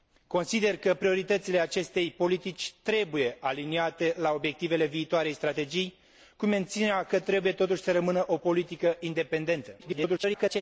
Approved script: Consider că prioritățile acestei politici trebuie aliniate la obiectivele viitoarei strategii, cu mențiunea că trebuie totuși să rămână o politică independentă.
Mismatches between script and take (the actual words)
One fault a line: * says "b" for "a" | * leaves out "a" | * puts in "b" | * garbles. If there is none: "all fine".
* garbles